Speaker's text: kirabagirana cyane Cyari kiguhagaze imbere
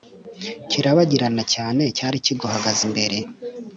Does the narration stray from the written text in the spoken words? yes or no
no